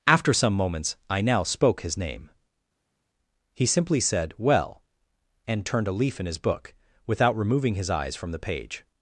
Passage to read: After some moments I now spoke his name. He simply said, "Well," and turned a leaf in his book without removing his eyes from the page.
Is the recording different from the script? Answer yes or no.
no